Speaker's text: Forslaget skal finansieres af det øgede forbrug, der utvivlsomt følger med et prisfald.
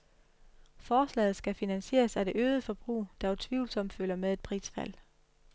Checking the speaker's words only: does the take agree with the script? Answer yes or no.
yes